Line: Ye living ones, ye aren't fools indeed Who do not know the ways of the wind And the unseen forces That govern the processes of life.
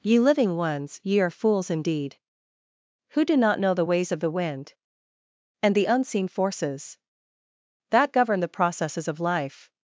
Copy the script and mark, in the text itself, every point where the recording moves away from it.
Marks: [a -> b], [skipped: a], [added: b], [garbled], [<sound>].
Ye living ones, ye [aren't -> are] fools indeed Who do not know the ways of the wind And the unseen forces That govern the processes of life.